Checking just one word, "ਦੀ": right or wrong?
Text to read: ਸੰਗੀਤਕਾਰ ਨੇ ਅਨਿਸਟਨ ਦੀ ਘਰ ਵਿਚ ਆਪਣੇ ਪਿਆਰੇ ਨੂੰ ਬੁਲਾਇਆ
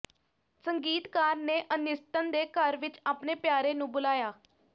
wrong